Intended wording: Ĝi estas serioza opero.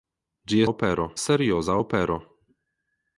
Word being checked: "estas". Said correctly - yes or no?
no